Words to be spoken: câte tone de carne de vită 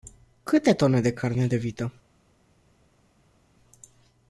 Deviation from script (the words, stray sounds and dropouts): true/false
false